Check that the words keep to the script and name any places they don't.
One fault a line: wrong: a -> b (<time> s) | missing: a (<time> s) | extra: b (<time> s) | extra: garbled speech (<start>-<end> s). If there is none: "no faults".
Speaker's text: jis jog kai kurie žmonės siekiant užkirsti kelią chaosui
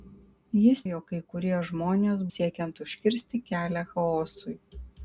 no faults